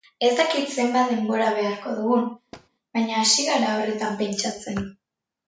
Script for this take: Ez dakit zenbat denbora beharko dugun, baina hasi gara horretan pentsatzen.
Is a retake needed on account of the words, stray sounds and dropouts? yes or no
yes